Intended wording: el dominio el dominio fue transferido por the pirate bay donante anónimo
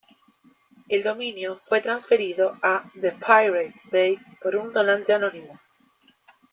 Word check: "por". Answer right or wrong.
wrong